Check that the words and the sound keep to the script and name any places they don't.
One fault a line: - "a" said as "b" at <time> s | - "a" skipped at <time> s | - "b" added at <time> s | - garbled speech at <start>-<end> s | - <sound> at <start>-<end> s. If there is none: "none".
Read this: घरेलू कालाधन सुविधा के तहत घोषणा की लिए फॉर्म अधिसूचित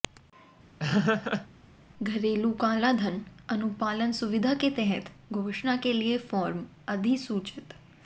- laugh at 0.8-1.5 s
- "अनुपालन" added at 3.5 s
- "की" said as "के" at 5.8 s